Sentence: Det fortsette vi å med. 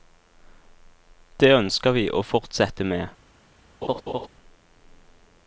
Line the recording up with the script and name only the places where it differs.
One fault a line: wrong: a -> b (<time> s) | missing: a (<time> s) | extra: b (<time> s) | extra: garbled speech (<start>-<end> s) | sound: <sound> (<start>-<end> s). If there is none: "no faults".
wrong: fortsette -> ønsker (1.6 s)
extra: fortsette (2.2 s)
sound: laugh (3.8-4.3 s)